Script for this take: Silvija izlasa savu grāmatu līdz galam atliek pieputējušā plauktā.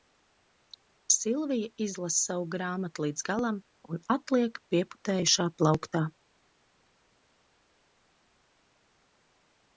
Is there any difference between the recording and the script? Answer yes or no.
yes